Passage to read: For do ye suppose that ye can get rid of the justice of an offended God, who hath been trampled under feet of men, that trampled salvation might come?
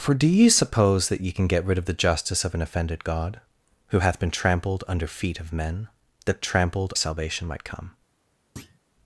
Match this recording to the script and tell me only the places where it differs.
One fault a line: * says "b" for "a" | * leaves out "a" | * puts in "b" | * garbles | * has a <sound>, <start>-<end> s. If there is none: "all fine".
* has a thud, 8.6-8.8 s